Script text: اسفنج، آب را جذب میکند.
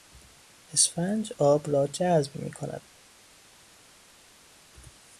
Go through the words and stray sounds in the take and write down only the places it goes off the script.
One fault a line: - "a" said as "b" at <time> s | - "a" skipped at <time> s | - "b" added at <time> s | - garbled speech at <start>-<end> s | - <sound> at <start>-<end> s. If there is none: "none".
none